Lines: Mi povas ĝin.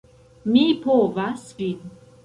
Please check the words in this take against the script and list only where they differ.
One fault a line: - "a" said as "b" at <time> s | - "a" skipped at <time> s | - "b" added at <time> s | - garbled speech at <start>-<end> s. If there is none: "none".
none